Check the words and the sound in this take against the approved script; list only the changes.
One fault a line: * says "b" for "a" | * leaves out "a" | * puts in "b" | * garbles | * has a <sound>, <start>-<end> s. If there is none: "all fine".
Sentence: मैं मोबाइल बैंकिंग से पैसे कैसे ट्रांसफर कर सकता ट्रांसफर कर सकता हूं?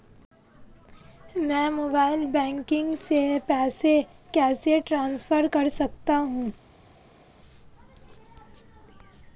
* leaves out "ट्रांसफर कर सकता"